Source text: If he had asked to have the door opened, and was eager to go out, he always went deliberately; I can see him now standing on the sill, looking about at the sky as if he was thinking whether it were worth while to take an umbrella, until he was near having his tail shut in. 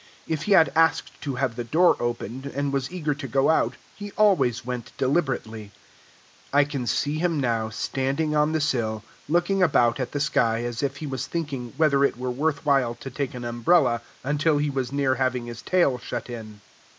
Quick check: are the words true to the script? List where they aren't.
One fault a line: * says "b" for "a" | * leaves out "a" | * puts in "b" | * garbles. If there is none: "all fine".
all fine